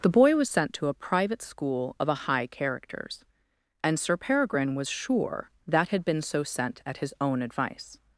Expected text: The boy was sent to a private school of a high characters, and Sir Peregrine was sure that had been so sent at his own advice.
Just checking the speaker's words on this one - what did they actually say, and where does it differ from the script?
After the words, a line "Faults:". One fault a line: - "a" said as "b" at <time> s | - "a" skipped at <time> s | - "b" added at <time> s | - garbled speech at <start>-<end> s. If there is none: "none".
The boy was sent to a private school of a high characters, and Sir Peregrine was sure that had been so sent at his own advice.
Faults:
none